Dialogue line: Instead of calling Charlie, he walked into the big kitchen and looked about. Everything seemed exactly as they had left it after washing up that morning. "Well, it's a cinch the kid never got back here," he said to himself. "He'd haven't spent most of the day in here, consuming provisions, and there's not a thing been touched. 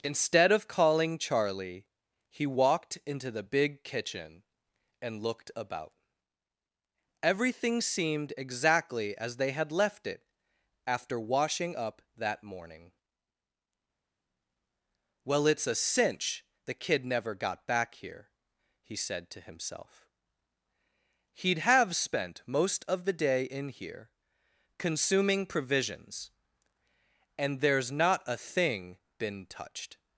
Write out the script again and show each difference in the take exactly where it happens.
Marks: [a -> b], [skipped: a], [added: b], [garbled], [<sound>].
Instead of calling Charlie, he walked into the big kitchen and looked about. Everything seemed exactly as they had left it after washing up that morning. "Well, it's a cinch the kid never got back here," he said to himself. "He'd [haven't -> have] spent most of the day in here, consuming provisions, and there's not a thing been touched.